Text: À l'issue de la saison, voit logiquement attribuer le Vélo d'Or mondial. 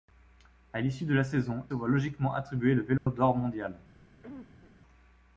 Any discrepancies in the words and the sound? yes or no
yes